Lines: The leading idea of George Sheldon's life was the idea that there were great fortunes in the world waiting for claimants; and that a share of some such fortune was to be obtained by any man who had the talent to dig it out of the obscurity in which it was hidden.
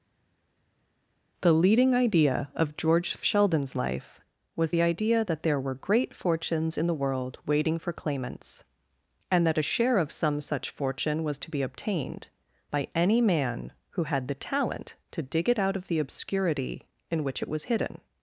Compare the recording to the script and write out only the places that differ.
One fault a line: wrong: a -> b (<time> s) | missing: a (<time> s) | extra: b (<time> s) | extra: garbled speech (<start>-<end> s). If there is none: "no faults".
no faults